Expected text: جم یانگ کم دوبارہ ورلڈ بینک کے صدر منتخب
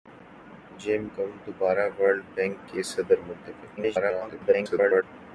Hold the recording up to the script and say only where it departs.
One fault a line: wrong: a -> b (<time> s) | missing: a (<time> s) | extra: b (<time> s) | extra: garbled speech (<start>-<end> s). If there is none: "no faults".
missing: یانگ (1.0 s)
extra: garbled speech (3.8-5.0 s)